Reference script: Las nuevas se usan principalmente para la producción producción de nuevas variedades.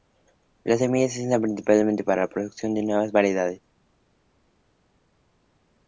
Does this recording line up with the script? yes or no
no